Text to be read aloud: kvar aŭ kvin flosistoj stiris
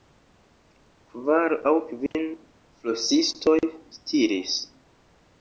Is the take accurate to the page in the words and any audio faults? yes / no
no